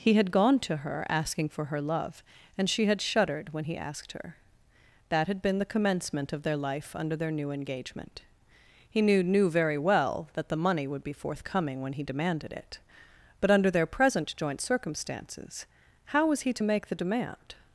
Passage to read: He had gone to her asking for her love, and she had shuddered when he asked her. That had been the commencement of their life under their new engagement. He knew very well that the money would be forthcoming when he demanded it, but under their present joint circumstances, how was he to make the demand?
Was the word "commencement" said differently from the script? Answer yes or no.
no